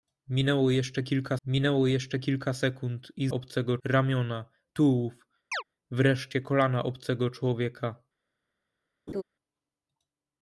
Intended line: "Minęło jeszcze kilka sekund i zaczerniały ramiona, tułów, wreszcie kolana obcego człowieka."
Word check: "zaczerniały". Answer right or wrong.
wrong